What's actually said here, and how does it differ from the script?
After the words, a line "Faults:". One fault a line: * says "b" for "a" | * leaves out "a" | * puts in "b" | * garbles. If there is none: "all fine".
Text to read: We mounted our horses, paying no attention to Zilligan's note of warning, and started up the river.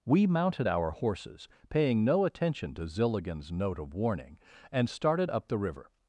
We mounted our horses, paying no attention to Zilligan's note of warning, and started up the river.
Faults:
all fine